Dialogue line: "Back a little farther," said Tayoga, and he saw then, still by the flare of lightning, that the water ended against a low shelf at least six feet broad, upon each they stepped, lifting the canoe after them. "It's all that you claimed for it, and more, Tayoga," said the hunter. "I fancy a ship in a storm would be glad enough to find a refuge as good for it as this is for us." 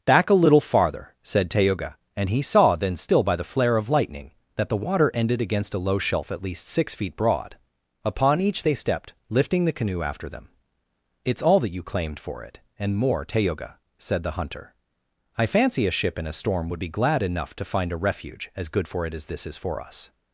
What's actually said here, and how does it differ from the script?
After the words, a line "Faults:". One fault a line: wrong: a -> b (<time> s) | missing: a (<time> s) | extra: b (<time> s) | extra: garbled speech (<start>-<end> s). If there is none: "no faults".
"Back a little farther," said Tayoga, and he saw then, still by the flare of lightning, that the water ended against a low shelf at least six feet broad, upon each they stepped, lifting the canoe after them. "It's all that you claimed for it, and more, Tayoga," said the hunter. "I fancy a ship in a storm would be glad enough to find a refuge as good for it as this is for us."
Faults:
no faults